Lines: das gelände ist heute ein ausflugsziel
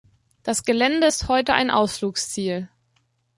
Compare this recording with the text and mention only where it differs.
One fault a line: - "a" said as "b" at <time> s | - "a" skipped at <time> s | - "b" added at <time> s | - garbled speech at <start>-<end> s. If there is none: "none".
none